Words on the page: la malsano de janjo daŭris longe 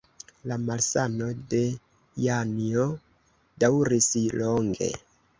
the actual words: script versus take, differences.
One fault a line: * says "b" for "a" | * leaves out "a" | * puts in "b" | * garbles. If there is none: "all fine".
all fine